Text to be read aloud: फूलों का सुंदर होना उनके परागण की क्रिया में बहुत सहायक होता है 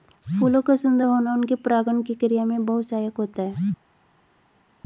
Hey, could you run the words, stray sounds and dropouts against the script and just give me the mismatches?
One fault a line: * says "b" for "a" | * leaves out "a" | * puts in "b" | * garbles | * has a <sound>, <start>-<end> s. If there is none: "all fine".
all fine